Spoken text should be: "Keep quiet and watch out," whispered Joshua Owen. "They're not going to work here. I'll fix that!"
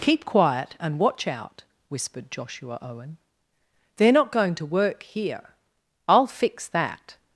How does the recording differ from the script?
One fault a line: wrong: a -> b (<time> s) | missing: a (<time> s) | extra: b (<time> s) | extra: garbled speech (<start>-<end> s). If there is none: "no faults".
no faults